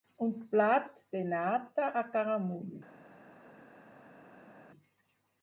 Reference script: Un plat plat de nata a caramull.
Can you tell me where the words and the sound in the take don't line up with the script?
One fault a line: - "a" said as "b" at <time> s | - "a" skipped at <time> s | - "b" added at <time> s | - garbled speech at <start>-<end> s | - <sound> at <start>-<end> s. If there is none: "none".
- "plat" skipped at 1.0 s